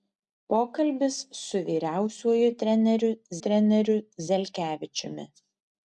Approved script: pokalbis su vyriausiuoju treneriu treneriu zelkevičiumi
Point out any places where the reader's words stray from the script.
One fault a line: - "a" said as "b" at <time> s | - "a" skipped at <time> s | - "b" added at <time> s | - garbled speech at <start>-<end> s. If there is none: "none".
none